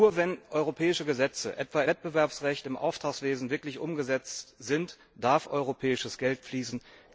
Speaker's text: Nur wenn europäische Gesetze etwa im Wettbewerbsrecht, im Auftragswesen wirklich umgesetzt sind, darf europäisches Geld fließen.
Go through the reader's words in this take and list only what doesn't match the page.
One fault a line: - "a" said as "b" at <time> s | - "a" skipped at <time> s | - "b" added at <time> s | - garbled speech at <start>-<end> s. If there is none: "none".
- "im" skipped at 1.8 s